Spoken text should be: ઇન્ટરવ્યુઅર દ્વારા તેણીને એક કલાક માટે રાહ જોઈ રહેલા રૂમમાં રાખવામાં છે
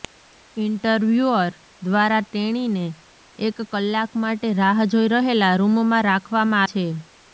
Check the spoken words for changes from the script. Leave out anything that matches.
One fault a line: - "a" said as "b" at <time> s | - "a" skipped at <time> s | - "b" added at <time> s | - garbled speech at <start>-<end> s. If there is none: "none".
none